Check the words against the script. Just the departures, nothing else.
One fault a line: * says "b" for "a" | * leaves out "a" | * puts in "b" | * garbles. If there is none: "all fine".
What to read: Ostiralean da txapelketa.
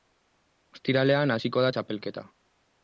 * puts in "hasiko"